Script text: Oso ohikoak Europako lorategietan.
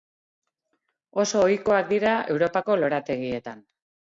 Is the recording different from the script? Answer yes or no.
yes